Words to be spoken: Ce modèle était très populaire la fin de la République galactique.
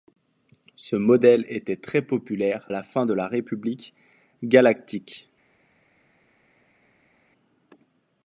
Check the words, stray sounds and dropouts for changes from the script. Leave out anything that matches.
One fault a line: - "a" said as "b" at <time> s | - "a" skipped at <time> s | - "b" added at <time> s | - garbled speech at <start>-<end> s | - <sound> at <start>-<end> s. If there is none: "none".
none